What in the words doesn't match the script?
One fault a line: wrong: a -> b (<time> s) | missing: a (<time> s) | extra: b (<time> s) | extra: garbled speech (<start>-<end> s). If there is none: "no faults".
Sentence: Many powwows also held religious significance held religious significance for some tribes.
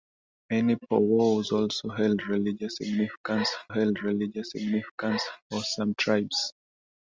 no faults